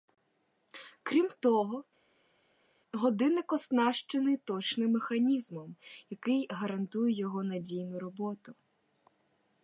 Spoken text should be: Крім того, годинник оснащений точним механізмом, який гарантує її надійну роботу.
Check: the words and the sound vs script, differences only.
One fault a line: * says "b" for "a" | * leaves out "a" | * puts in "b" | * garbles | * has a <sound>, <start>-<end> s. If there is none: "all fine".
* says "його" for "її"